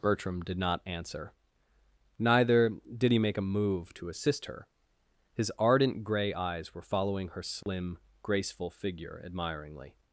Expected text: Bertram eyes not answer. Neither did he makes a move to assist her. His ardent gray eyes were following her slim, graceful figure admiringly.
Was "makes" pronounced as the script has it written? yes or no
no